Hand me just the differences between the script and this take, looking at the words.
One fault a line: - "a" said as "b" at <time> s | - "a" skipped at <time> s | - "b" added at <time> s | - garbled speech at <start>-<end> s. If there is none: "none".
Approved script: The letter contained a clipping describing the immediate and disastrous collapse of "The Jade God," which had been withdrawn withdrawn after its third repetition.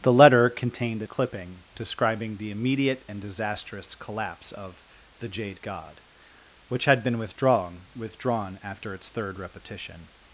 none